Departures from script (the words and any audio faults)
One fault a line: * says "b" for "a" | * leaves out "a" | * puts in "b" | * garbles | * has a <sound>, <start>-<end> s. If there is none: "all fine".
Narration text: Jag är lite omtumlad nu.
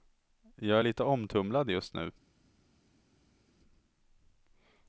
* puts in "just"